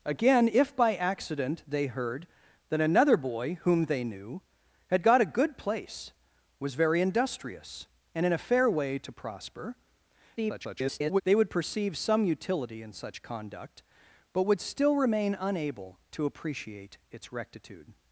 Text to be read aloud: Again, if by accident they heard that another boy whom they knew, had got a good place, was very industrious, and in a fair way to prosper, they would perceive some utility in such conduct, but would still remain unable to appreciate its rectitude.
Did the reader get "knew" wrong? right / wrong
right